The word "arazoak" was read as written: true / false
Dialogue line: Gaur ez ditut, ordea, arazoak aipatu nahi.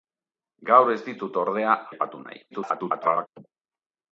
false